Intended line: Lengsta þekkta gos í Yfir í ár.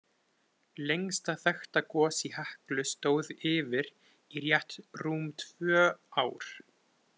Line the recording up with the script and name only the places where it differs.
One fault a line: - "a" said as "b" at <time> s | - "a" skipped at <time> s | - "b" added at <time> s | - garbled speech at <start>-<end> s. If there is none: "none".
- "Heklu stóð" added at 2.4 s
- "rétt rúm tvö" added at 4.5 s